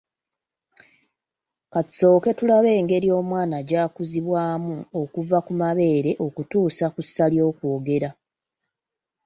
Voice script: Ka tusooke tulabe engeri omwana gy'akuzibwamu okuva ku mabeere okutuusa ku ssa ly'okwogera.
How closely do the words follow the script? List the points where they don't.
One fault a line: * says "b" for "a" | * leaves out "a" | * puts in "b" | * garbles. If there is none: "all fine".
all fine